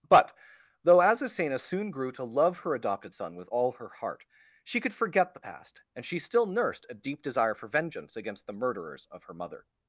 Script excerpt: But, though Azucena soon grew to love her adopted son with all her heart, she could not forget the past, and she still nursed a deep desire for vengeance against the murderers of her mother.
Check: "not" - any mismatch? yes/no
yes